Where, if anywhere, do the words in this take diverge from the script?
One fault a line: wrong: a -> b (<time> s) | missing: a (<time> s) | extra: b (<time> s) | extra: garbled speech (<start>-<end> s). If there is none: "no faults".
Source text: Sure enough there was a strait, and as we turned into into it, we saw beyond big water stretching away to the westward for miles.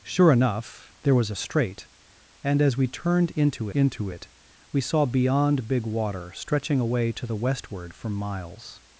no faults